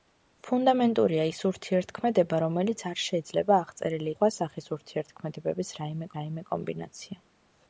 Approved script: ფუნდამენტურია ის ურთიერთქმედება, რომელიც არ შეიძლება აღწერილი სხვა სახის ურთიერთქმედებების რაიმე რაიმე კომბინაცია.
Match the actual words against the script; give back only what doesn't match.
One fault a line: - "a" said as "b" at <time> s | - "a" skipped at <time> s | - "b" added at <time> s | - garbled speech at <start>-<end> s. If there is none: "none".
none